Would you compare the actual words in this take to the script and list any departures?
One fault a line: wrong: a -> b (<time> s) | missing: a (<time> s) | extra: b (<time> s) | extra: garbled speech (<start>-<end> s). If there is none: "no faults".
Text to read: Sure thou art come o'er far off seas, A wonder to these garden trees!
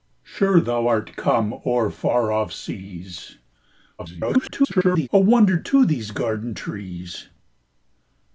extra: garbled speech (4.0-5.1 s)